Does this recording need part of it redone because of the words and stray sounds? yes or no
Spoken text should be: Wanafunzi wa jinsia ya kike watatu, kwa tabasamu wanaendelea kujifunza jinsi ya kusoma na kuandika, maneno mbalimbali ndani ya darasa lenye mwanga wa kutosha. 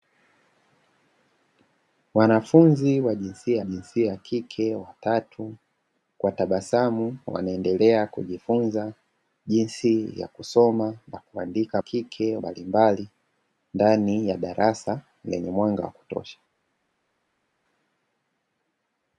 yes